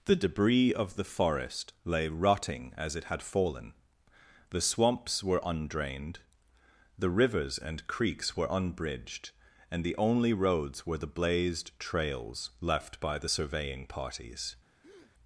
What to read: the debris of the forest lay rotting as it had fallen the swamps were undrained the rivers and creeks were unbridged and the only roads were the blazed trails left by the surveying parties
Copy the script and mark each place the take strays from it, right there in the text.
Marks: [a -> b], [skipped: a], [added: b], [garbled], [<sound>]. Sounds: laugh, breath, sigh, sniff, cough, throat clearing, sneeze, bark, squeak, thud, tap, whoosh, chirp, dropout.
the debris of the forest lay rotting as it had fallen the swamps were undrained the rivers and creeks were unbridged and the only roads were the blazed trails left by the surveying parties [breath]